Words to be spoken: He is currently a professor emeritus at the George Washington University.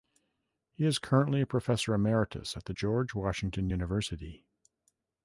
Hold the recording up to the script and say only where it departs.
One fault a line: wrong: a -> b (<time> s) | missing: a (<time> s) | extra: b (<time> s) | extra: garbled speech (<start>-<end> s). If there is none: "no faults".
no faults